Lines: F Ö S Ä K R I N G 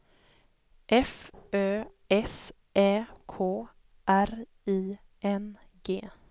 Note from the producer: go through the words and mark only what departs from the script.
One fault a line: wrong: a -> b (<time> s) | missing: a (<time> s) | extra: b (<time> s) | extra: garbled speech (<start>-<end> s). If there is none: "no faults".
no faults